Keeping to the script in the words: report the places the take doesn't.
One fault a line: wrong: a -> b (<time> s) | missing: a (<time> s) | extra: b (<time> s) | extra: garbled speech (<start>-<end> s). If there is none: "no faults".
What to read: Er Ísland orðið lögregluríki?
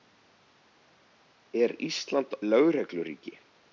missing: orðið (2.4 s)